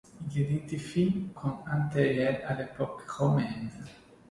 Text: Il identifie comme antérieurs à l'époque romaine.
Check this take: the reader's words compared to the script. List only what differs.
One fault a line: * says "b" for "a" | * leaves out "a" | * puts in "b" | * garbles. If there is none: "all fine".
all fine